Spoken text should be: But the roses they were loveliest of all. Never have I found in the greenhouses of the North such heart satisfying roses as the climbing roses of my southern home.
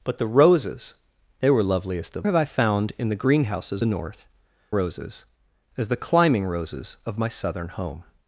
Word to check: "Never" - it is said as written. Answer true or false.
false